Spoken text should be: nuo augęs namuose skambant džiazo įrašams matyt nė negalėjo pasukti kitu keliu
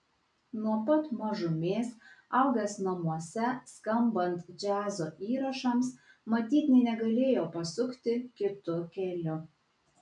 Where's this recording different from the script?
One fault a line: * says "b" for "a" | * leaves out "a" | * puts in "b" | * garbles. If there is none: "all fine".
* puts in "pat mažumės"